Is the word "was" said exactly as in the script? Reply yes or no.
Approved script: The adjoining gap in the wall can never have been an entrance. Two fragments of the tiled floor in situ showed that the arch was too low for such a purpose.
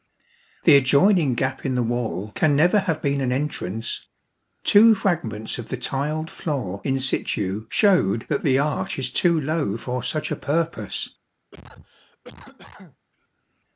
no